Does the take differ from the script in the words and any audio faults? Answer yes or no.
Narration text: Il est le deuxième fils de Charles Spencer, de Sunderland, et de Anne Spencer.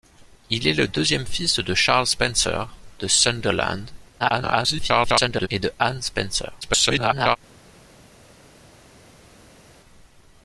yes